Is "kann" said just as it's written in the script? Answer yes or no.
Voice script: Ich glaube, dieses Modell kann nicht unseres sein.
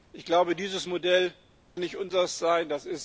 no